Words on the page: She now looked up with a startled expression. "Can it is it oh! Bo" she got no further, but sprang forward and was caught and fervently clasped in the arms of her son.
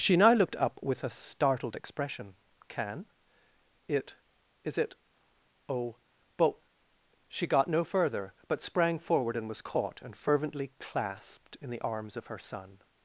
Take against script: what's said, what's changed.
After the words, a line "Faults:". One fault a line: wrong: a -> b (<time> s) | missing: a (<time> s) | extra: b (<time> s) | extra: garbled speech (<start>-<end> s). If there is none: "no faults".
She now looked up with a startled expression. "Can it is it oh! But" she got no further, but sprang forward and was caught and fervently clasped in the arms of her son.
Faults:
wrong: Bo -> But (6.4 s)